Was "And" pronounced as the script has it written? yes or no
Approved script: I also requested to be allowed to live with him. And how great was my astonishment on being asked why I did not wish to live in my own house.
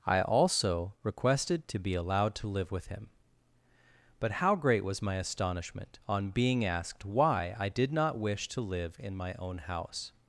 no